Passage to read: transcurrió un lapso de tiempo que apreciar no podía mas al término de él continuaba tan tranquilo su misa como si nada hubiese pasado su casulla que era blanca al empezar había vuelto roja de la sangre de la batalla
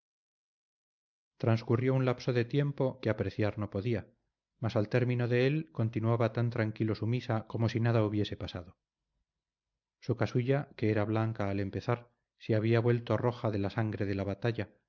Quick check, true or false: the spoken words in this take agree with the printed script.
false